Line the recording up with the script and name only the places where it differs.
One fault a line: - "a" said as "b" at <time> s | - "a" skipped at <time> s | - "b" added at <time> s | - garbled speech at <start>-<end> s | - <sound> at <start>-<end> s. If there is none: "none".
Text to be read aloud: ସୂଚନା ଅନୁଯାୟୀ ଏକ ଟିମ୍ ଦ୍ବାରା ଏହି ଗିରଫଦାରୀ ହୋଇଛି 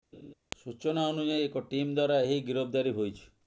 - laugh at 0.1-0.3 s